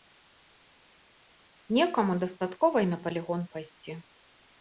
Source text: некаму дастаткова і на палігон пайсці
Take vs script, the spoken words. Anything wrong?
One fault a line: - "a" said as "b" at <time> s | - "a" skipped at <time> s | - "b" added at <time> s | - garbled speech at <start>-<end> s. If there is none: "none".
none